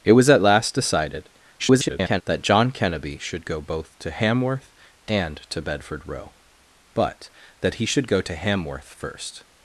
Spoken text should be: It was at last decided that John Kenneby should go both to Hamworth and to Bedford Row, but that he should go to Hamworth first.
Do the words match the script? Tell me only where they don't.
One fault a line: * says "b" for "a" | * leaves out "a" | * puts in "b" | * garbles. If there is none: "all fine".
* garbles